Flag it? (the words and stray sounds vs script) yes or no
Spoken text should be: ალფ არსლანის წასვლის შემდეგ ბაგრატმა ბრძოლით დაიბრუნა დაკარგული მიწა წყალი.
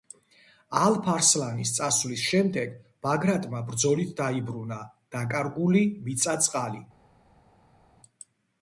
no